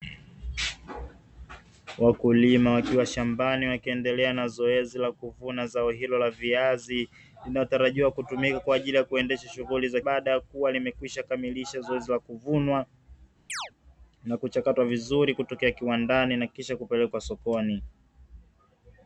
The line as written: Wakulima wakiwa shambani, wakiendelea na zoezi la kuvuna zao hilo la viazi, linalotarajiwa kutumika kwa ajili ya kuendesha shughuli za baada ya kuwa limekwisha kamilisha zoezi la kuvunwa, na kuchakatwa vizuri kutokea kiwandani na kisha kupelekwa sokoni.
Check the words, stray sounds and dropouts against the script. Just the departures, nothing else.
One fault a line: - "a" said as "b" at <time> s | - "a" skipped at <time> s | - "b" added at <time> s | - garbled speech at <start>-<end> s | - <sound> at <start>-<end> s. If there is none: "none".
- chirp at 13.5-13.7 s